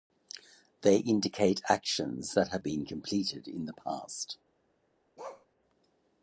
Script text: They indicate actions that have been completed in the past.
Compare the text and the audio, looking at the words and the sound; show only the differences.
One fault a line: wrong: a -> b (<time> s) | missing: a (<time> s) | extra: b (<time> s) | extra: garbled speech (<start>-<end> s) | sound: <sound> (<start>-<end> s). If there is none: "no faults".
sound: bark (5.2-5.5 s)